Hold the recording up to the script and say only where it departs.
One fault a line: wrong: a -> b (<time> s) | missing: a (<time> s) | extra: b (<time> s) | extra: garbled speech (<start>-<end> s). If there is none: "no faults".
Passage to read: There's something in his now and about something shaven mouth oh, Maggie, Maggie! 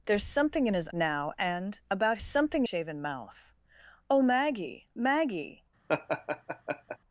no faults